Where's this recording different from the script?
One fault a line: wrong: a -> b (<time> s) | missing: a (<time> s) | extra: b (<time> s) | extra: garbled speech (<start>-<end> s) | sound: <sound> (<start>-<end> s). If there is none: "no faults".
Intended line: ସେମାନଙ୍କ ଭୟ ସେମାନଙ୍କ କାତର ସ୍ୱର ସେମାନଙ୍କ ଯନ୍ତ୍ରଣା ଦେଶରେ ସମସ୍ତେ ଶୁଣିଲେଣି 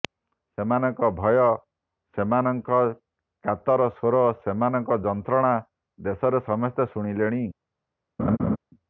sound: laugh (8.2-8.6 s)